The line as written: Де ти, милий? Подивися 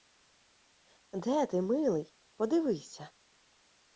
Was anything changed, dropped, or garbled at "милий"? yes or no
no